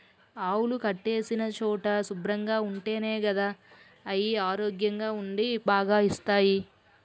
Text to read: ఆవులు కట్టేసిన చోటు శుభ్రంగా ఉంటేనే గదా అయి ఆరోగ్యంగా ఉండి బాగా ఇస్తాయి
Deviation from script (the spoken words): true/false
false